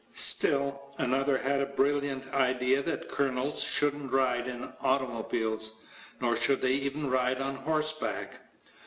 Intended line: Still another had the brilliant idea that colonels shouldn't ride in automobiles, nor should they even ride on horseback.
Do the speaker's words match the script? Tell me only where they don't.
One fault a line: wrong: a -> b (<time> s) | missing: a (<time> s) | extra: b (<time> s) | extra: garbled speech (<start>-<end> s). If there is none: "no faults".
no faults